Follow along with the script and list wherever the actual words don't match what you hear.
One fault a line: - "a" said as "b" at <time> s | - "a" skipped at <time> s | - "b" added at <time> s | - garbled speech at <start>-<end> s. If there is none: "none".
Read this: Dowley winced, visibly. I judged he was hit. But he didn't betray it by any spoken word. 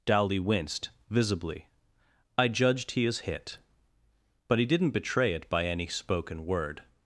- "was" said as "is" at 3.0 s